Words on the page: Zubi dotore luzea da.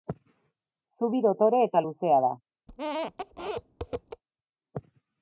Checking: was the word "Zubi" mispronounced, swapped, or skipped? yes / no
no